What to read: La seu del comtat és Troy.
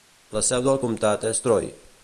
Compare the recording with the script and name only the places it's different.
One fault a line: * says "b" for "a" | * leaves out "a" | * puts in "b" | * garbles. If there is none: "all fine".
all fine